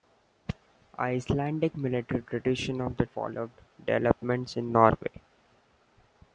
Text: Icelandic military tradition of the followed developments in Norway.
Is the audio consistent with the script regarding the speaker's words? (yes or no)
yes